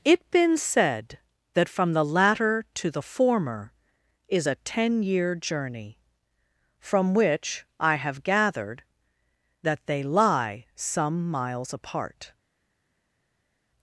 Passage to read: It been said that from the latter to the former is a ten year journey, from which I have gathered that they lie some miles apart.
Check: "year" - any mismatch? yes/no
no